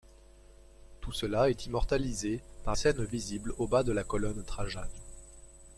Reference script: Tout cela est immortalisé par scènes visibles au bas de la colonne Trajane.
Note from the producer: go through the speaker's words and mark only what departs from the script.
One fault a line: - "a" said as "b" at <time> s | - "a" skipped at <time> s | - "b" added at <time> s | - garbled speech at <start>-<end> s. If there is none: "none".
none